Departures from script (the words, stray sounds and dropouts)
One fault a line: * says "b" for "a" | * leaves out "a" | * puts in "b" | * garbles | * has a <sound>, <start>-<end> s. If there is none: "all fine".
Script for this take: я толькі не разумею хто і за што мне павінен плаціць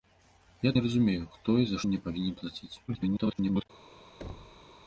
* leaves out "толькі"
* leaves out "што"
* garbles
* has a thud, 4.2-4.7 s